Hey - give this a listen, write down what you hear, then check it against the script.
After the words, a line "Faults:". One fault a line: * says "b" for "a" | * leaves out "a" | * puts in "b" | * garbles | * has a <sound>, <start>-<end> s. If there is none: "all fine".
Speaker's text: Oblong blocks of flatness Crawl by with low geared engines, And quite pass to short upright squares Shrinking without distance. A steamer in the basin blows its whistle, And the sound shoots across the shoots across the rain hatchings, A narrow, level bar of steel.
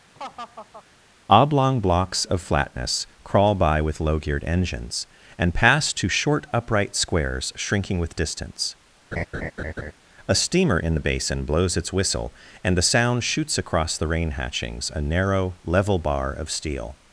Oblong blocks of flatness Crawl by with low geared engines, And pass to short upright squares Shrinking with distance. A steamer in the basin blows its whistle, And the sound shoots across the rain hatchings, A narrow, level bar of steel.
Faults:
* has a laugh, 0.1-0.8 s
* leaves out "quite"
* says "with" for "without"
* has a laugh, 9.1-9.9 s
* leaves out "shoots across the"